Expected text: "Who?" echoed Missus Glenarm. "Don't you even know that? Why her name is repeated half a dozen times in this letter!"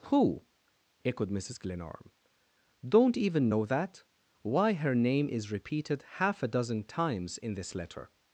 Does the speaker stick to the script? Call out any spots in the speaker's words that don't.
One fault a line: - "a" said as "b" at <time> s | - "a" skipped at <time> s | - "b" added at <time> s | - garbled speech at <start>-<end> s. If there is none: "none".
- "you" skipped at 3.1 s